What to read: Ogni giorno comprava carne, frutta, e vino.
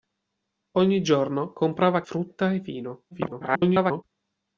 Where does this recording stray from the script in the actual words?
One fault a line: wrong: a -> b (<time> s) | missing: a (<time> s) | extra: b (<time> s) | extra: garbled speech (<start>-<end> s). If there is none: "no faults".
missing: carne (2.0 s)
extra: garbled speech (3.1-4.0 s)